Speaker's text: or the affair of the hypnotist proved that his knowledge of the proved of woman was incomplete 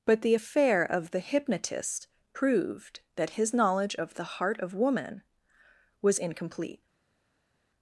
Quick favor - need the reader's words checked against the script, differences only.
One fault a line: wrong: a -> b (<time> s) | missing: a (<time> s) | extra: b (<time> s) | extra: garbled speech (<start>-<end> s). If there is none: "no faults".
wrong: or -> but (0.1 s)
wrong: proved -> heart (4.4 s)